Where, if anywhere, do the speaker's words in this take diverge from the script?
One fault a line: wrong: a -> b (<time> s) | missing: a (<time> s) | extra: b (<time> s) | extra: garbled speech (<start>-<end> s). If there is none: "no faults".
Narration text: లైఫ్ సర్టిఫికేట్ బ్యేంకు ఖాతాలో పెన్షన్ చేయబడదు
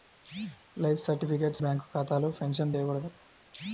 no faults